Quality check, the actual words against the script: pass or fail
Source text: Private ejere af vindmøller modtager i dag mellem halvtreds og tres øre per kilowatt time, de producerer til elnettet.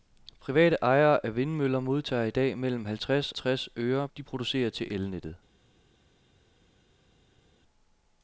fail